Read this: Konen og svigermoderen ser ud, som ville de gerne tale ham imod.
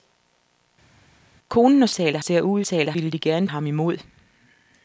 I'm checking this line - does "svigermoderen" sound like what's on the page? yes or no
no